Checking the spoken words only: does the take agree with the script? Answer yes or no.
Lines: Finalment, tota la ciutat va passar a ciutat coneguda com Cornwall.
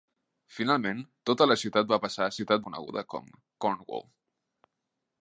yes